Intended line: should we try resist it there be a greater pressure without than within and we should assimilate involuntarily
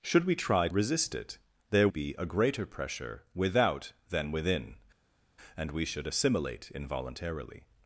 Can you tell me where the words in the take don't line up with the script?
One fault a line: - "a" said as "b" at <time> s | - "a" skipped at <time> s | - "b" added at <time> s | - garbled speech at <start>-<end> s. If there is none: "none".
none